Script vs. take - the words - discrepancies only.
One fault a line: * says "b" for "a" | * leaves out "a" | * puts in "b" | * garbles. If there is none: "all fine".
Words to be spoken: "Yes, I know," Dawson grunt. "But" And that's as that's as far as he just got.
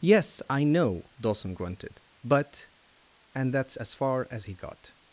* says "grunted" for "grunt"
* leaves out "that's as"
* leaves out "just"